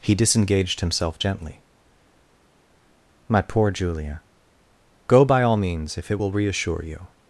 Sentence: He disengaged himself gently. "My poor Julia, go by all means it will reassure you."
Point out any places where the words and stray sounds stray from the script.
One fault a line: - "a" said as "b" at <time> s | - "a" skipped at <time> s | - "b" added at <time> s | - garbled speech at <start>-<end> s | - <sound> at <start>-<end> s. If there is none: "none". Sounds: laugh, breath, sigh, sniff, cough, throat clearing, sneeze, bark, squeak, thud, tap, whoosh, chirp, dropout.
- "if" added at 6.0 s